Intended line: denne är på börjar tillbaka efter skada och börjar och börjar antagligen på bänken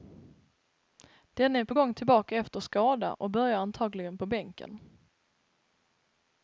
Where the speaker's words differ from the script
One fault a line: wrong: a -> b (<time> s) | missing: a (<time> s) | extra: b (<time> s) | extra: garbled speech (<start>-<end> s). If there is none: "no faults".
wrong: börjar -> gång (1.7 s)
missing: och börjar (3.6 s)